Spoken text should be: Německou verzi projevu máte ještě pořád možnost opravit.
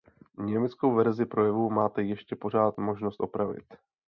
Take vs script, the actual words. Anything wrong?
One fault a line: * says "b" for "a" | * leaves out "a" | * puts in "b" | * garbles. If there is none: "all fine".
all fine